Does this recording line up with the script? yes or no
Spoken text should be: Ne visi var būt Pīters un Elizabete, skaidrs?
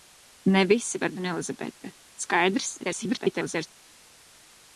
no